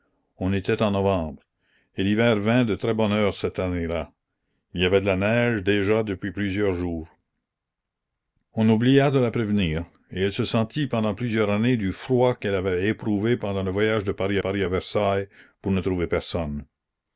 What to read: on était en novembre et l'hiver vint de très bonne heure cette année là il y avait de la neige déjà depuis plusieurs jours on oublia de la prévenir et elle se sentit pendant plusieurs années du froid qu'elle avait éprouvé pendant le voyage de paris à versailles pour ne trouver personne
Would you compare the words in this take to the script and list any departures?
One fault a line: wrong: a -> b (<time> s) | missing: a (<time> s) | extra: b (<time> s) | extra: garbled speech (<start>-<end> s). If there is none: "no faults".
extra: paris (14.4 s)